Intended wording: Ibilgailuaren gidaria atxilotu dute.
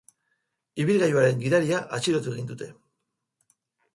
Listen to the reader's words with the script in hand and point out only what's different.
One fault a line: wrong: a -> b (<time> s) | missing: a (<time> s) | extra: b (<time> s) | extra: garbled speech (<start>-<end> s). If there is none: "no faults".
extra: egin (2.4 s)